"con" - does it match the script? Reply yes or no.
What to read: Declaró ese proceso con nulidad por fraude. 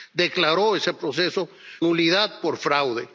no